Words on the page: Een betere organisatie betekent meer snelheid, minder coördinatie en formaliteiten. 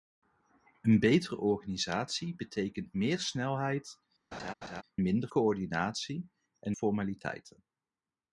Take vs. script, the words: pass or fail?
pass